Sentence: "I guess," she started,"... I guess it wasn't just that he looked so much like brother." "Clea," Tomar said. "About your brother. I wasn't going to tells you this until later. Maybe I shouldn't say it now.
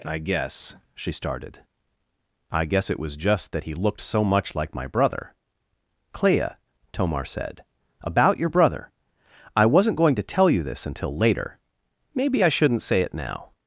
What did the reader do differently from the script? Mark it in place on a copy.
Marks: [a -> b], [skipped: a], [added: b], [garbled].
"I guess," she started,"... I guess it [wasn't -> was] just that he looked so much like [added: my] brother." "Clea," Tomar said. "About your brother. I wasn't going to [tells -> tell] you this until later. Maybe I shouldn't say it now.